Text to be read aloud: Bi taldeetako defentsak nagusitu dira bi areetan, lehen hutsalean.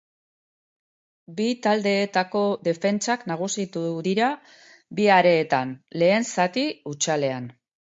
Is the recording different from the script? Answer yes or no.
yes